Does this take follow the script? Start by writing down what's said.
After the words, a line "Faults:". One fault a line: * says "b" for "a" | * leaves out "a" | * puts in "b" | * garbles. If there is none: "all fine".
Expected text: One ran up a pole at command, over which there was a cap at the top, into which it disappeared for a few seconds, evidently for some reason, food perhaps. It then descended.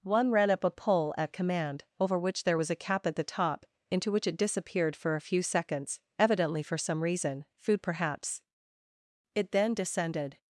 One ran up a pole at command, over which there was a cap at the top, into which it disappeared for a few seconds, evidently for some reason, food perhaps. It then descended.
Faults:
all fine